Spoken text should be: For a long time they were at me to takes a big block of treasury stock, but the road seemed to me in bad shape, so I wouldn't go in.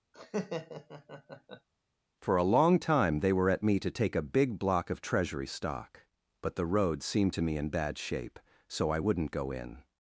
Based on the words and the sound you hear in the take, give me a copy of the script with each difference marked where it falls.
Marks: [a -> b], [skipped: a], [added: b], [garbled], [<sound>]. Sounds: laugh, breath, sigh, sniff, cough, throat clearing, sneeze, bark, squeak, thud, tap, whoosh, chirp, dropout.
[laugh] For a long time they were at me to [takes -> take] a big block of treasury stock, but the road seemed to me in bad shape, so I wouldn't go in.